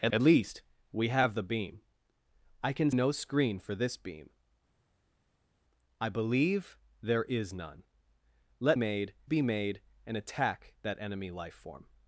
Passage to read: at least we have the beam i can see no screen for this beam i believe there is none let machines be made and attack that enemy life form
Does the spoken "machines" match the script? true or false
false